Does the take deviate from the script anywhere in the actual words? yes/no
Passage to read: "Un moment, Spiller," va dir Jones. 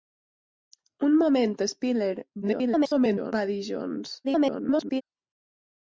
yes